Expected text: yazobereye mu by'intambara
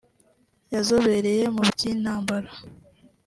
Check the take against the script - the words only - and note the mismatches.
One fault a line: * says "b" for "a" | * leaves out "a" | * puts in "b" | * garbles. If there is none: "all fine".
all fine